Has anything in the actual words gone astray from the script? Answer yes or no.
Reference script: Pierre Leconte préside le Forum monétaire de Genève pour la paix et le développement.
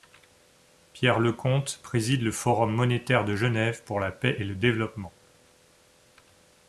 no